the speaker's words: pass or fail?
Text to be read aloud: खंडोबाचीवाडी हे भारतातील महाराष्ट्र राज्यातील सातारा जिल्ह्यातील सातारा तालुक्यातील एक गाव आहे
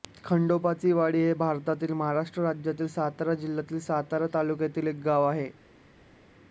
pass